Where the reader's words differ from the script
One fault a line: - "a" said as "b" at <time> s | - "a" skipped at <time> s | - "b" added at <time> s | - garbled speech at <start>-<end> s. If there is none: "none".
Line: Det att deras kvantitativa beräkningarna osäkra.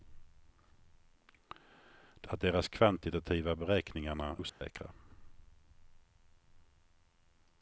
none